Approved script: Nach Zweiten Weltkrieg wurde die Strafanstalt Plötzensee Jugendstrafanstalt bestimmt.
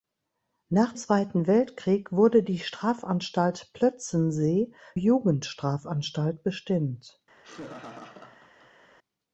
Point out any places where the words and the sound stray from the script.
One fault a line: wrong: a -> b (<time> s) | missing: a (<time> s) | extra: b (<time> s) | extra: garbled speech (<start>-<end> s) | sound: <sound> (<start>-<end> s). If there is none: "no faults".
sound: laugh (7.4-8.9 s)